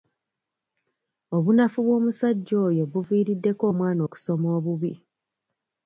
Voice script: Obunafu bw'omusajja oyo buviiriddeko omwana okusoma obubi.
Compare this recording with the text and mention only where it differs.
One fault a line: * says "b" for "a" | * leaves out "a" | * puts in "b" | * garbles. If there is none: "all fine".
all fine